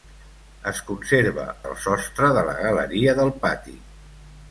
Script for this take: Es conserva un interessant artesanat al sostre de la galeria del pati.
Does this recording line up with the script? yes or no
no